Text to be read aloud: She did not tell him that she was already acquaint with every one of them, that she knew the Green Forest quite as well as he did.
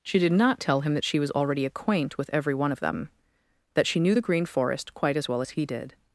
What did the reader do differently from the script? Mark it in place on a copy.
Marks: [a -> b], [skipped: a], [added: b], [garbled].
She did not tell him that she was already acquaint with every one of them, that she knew the Green Forest quite as well as he did.